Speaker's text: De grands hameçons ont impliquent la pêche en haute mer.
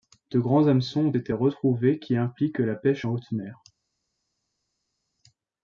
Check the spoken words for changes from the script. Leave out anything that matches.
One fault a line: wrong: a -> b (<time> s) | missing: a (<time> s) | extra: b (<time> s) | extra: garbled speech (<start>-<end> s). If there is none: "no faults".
extra: été retrouvés qui (1.1 s)